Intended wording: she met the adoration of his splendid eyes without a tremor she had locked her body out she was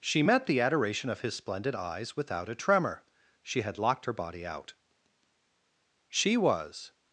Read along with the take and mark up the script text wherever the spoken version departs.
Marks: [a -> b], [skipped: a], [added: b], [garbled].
she met the adoration of his splendid eyes without a tremor she had locked her body out she was